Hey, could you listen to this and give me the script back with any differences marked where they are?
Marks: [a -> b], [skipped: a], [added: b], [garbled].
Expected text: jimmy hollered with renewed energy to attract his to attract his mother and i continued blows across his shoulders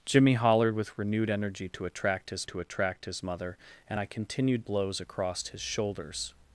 jimmy hollered with renewed energy to attract his to attract his mother and i continued blows across his shoulders